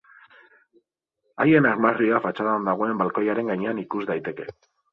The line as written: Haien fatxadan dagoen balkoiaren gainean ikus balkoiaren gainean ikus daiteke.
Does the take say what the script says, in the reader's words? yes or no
no